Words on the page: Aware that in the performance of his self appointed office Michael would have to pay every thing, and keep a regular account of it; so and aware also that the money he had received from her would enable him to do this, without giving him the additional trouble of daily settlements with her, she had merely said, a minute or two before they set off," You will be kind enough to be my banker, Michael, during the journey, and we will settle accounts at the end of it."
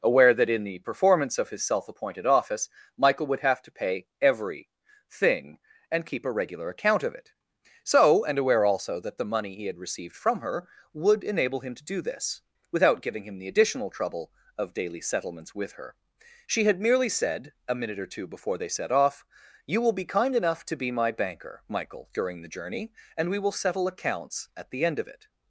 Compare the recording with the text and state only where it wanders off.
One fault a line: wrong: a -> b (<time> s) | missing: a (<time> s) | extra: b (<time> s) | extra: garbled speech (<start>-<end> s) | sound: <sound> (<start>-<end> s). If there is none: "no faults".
no faults